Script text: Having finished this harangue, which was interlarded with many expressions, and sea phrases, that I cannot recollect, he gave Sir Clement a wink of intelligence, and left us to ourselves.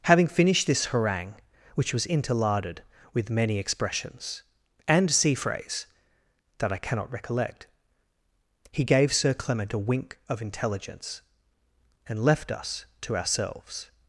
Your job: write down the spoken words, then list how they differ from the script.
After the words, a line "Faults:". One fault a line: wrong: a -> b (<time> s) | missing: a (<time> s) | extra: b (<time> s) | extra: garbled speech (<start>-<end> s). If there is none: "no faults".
Having finished this harangue, which was interlarded with many expressions, and sea phrase, that I cannot recollect, he gave Sir Clement a wink of intelligence, and left us to ourselves.
Faults:
wrong: phrases -> phrase (5.3 s)